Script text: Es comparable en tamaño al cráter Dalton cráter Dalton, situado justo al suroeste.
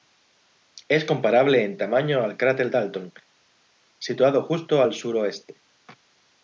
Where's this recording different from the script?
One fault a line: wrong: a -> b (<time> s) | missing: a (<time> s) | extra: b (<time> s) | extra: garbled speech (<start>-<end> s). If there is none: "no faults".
missing: cráter Dalton (3.1 s)